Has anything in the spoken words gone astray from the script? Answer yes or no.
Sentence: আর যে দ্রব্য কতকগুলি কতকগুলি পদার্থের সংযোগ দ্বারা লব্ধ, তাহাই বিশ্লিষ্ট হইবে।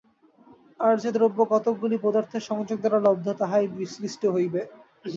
yes